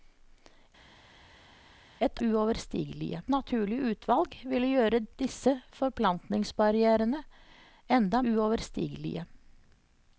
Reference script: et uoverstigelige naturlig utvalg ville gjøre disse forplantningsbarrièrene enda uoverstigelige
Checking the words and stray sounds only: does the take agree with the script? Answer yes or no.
yes